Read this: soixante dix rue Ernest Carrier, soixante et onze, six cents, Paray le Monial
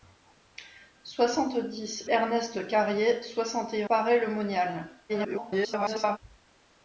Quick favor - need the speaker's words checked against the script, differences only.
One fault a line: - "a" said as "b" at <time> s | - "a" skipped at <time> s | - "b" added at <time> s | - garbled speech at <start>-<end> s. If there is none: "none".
- "rue" skipped at 2.1 s
- "onze six cents" skipped at 3.8 s
- garbled speech at 5.1-6.2 s